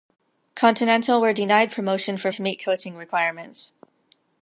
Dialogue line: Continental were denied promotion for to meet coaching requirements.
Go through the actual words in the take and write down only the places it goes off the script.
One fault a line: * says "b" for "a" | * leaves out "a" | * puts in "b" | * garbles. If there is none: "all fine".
all fine